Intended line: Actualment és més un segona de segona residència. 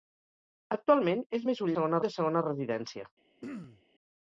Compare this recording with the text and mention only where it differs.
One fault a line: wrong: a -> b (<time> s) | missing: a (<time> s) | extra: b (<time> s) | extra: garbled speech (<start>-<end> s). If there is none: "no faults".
no faults